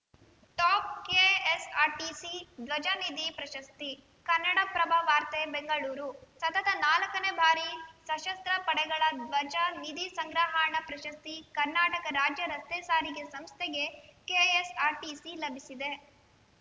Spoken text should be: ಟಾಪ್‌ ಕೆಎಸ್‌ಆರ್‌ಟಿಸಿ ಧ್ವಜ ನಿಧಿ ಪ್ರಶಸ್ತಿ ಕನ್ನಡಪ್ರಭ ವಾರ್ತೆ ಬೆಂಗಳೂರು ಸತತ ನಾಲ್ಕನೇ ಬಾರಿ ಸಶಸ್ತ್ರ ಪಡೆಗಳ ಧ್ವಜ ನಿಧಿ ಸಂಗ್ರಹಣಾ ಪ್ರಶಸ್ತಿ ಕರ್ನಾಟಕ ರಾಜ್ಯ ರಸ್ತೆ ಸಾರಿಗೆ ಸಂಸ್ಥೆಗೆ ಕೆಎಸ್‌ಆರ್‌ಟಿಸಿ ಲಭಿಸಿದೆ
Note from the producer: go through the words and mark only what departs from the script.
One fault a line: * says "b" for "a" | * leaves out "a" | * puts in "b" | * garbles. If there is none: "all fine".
all fine